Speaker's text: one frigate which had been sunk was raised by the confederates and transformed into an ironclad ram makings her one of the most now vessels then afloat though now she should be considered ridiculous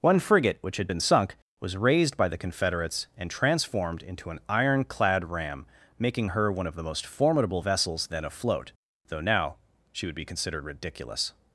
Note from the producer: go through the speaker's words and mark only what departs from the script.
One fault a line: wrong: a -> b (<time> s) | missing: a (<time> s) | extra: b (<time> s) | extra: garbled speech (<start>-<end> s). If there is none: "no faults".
wrong: makings -> making (6.0 s)
wrong: now -> formidable (7.0 s)
wrong: should -> would (10.0 s)